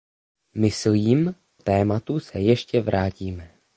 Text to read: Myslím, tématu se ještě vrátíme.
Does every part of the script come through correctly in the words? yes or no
yes